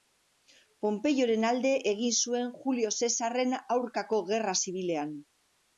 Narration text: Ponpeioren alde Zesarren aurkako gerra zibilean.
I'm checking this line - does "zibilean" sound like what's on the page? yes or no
yes